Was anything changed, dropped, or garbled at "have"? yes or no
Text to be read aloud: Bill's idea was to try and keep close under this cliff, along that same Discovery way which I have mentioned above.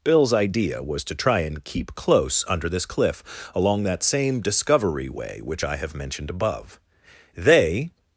no